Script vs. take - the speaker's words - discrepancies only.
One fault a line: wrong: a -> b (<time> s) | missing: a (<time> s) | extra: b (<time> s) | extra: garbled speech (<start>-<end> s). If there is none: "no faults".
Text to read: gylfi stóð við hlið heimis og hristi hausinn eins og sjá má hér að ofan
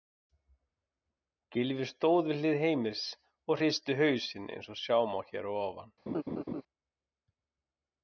no faults